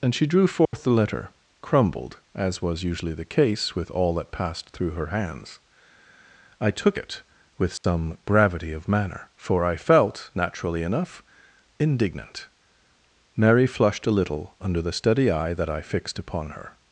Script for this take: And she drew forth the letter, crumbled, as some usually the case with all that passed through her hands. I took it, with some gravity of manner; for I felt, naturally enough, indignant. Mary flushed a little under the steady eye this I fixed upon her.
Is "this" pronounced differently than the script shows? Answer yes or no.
yes